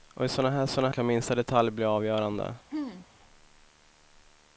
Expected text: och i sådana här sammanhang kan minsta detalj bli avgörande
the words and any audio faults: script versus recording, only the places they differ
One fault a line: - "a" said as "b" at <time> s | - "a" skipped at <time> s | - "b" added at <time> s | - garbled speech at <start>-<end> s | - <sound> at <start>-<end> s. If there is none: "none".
- "sammanhang" said as "sådana" at 0.7 s
- throat clearing at 2.7-3.1 s